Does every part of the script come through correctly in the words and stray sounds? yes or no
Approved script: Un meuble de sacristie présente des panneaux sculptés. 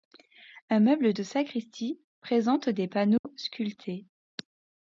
no